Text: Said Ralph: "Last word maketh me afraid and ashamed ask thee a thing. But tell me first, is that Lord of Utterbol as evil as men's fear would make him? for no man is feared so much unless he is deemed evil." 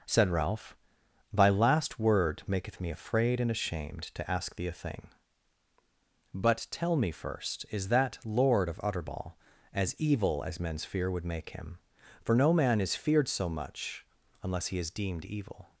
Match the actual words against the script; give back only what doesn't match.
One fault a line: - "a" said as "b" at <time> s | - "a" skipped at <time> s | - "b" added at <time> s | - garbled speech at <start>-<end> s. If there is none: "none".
- "Thy" added at 1.3 s
- "to" added at 4.2 s